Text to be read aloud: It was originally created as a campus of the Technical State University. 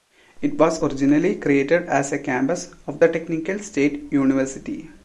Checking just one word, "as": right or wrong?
right